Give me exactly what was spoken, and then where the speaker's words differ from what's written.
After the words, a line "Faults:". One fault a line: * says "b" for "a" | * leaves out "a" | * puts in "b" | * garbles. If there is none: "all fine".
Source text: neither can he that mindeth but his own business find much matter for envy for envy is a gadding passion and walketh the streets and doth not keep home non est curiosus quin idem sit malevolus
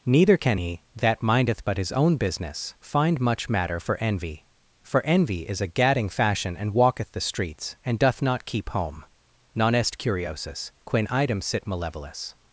neither can he that mindeth but his own business find much matter for envy for envy is a gadding fashion and walketh the streets and doth not keep home non est curiosus quin idem sit malevolus
Faults:
* says "fashion" for "passion"